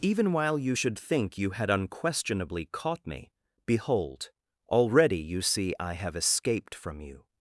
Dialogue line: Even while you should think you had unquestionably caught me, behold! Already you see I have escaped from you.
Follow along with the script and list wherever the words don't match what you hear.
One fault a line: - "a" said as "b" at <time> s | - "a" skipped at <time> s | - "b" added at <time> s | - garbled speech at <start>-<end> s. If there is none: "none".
none